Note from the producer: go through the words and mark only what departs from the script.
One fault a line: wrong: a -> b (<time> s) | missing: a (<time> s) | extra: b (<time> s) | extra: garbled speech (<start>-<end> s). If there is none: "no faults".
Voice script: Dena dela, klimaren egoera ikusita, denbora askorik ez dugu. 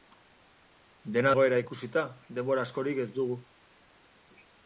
missing: dela klimaren (1.3 s)